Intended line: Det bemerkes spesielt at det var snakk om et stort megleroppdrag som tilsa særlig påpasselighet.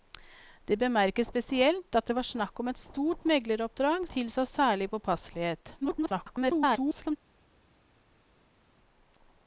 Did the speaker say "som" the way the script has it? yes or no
no